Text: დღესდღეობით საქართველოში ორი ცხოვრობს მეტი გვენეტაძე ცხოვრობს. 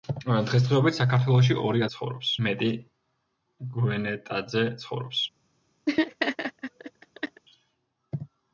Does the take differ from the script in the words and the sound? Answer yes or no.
yes